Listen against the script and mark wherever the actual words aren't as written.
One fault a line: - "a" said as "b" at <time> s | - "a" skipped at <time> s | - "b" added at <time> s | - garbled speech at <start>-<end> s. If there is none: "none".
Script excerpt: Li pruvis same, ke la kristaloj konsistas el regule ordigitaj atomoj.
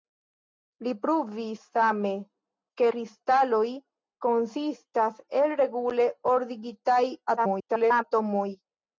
- "la" skipped at 2.9 s
- garbled speech at 7.4-8.0 s